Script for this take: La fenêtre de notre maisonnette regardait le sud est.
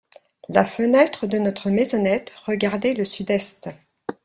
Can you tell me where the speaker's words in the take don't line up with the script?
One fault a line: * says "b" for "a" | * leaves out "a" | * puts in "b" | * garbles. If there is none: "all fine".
all fine